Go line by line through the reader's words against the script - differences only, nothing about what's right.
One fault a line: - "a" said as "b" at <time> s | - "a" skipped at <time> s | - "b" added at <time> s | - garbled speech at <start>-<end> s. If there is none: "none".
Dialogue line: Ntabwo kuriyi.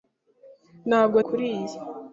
none